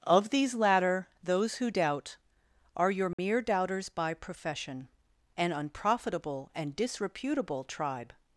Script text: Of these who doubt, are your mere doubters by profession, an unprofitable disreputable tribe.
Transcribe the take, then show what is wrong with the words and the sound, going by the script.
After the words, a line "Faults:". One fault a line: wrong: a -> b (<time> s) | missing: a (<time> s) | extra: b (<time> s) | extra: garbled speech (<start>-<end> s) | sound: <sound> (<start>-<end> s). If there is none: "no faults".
Of these latter, those who doubt, are your mere doubters by profession, an unprofitable and disreputable tribe.
Faults:
extra: latter those (0.6 s)
sound: dropout (3.1-3.2 s)
extra: and (6.5 s)